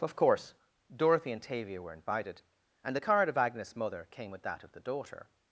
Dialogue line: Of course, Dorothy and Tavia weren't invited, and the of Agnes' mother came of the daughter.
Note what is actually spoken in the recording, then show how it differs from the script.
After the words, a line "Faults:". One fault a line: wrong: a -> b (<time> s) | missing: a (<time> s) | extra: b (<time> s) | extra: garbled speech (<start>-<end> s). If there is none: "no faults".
Of course, Dorothy and Tavia were invited, and the card of Agnes' mother came with that of the daughter.
Faults:
wrong: weren't -> were (1.8 s)
extra: card (3.0 s)
extra: with that (4.3 s)